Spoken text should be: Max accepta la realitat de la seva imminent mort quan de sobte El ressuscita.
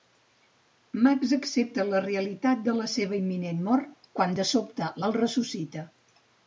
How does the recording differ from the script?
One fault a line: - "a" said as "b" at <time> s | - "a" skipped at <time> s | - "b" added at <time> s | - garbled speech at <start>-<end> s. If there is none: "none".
none